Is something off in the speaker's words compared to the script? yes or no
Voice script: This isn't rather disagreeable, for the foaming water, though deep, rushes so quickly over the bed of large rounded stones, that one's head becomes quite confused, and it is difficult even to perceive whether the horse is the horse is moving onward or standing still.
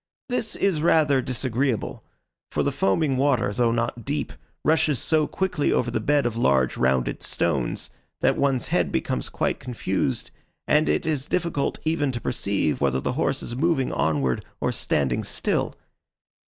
yes